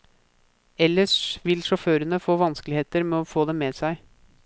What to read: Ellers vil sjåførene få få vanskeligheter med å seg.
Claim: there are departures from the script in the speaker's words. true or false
true